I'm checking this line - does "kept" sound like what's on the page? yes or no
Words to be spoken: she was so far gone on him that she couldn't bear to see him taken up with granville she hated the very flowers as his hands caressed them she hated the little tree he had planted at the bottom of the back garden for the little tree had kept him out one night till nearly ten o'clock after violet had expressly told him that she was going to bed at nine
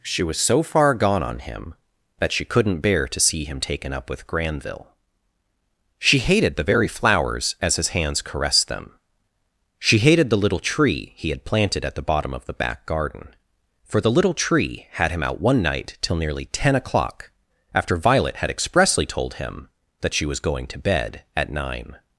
no